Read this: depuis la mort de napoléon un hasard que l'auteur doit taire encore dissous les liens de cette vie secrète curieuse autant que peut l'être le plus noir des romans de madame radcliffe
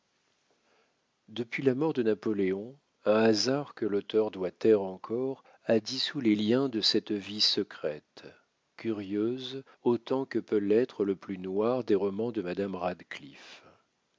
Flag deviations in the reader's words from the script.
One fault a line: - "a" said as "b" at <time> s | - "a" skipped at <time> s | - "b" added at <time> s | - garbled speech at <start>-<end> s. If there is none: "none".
- "a" added at 5.7 s